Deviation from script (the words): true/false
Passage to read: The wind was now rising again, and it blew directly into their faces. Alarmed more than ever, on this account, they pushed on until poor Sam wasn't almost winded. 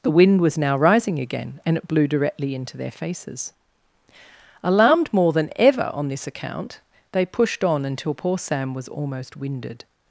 true